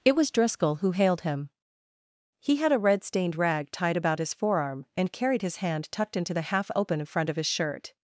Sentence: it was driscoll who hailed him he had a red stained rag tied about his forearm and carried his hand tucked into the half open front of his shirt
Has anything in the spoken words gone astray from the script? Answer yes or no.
no